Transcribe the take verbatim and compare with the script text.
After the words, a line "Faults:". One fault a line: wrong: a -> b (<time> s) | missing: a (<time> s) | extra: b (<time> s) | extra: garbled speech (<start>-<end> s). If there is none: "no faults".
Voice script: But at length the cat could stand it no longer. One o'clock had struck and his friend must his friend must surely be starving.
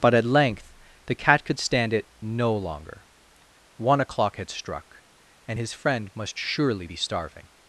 But at length the cat could stand it no longer. One o'clock had struck and his friend must surely be starving.
Faults:
missing: his friend must (6.4 s)